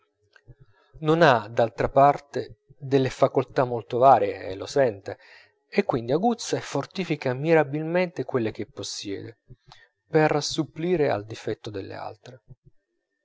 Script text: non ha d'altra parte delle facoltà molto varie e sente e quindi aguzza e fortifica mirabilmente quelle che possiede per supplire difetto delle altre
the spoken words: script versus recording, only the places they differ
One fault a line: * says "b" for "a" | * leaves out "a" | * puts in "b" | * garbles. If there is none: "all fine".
* puts in "lo"
* puts in "al"